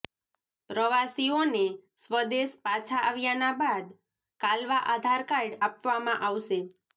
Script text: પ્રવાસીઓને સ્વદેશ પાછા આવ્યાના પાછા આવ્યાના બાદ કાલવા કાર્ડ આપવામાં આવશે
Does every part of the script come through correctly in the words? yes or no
no